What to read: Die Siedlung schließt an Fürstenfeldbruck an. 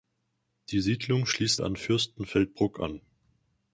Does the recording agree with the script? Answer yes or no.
yes